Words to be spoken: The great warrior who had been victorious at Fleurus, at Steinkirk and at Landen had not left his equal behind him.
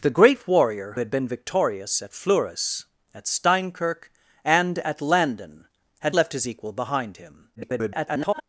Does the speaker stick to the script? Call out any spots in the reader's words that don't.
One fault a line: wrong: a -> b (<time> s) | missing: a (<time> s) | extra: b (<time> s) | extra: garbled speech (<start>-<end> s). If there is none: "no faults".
missing: who (0.9 s)
missing: not (6.2 s)
extra: garbled speech (7.6-8.4 s)